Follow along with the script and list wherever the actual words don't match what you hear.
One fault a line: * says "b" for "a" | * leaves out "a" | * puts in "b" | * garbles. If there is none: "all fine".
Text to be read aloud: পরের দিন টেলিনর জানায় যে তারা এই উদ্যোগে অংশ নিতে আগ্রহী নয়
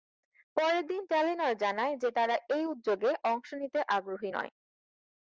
all fine